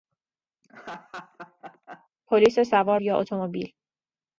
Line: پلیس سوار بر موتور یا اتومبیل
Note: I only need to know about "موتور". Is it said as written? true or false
false